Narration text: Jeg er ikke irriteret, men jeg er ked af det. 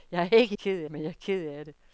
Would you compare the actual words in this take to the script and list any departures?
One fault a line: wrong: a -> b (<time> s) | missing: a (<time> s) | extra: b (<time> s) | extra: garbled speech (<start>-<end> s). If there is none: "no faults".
wrong: irriteret -> ked (0.6 s)